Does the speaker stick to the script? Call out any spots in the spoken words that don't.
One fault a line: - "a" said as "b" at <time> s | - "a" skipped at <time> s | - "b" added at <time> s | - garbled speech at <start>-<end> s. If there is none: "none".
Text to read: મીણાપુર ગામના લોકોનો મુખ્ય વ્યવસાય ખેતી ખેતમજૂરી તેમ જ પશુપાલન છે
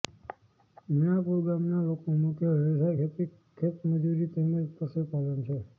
none